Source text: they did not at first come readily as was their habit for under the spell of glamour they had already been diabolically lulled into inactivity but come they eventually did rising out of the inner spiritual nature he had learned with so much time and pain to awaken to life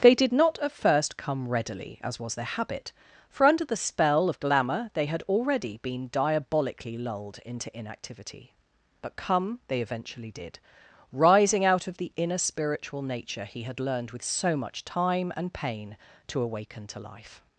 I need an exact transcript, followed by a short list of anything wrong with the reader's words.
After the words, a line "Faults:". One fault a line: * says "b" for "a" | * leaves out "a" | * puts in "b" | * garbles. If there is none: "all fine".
they did not at first come readily as was their habit for under the spell of glamour they had already been diabolically lulled into inactivity but come they eventually did rising out of the inner spiritual nature he had learned with so much time and pain to awaken to life
Faults:
all fine